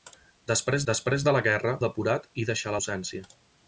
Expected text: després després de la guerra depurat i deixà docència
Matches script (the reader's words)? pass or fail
pass